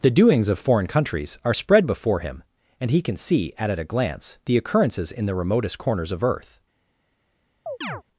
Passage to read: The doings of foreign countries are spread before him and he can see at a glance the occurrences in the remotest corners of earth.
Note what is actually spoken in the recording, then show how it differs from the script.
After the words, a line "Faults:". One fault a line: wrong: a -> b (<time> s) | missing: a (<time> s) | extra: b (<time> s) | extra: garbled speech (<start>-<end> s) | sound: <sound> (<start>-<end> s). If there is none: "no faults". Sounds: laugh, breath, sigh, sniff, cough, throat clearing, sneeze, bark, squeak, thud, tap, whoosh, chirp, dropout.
The doings of foreign countries are spread before him and he can see at at a glance the occurrences in the remotest corners of earth.
Faults:
extra: at (3.7 s)
sound: chirp (7.7-8.0 s)